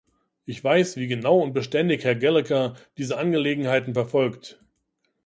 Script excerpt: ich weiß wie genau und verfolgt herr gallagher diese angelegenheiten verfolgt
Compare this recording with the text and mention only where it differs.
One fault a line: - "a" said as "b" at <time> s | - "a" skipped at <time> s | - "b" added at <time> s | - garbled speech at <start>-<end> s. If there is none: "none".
- "verfolgt" said as "beständig" at 1.5 s